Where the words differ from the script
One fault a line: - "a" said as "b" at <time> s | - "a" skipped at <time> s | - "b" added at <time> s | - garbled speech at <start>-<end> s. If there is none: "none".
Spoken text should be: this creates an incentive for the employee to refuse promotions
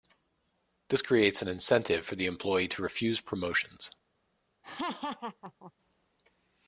none